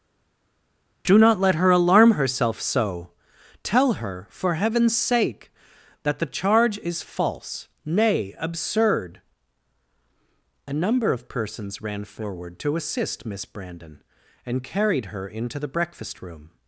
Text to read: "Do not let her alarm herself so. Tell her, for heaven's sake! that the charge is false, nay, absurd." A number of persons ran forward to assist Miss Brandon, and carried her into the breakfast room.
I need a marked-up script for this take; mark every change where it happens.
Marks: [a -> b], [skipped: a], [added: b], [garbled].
"Do not let her alarm herself so. Tell her, for heaven's sake! that the charge is false, nay, absurd." A number of persons ran forward to assist Miss Brandon, and carried her into the breakfast room.